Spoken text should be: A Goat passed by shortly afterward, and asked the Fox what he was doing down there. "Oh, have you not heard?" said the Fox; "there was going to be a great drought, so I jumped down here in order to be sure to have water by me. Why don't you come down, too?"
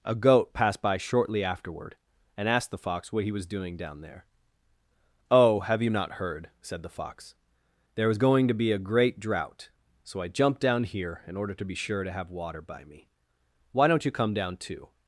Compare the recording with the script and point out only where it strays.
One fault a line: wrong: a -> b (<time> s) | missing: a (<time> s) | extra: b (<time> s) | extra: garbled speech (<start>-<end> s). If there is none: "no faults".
no faults